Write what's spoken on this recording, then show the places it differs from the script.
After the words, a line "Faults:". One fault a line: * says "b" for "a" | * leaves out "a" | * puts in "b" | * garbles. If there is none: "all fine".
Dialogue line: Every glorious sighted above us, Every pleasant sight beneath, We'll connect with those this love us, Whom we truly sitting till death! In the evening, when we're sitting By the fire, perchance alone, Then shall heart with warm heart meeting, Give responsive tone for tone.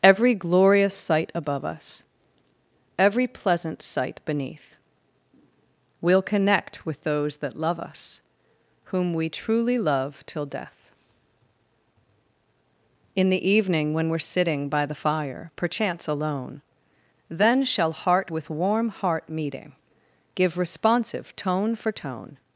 Every glorious sight above us, Every pleasant sight beneath, We'll connect with those that love us, Whom we truly love till death! In the evening, when we're sitting By the fire, perchance alone, Then shall heart with warm heart meeting, Give responsive tone for tone.
Faults:
* says "sight" for "sighted"
* says "that" for "this"
* says "love" for "sitting"